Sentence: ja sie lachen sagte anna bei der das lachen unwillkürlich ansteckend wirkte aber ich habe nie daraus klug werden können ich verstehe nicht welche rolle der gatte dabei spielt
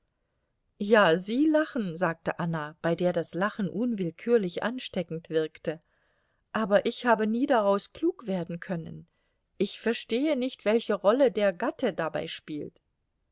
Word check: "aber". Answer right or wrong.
right